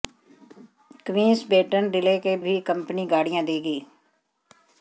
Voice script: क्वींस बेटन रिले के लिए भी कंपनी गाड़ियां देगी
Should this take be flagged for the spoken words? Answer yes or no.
yes